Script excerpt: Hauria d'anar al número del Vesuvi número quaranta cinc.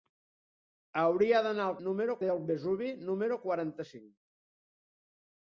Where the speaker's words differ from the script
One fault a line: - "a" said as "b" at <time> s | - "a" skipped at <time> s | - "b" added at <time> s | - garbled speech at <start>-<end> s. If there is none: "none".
none